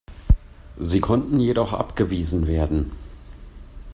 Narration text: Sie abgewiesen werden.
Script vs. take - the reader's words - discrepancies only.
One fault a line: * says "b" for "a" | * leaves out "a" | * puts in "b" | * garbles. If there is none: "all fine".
* puts in "konnten jedoch"